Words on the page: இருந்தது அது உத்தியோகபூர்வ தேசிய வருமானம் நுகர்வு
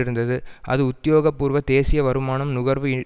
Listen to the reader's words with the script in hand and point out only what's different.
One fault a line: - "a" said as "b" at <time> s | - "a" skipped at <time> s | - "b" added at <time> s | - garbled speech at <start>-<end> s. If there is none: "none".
none